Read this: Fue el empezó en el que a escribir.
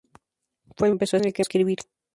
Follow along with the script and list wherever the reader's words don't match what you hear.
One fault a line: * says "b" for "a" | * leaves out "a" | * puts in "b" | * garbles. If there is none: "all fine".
all fine